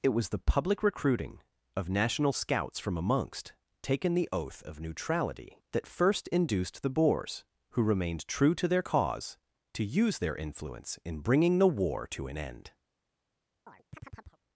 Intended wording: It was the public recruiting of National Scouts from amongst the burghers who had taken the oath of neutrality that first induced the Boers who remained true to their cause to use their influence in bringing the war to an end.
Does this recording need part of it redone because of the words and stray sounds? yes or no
yes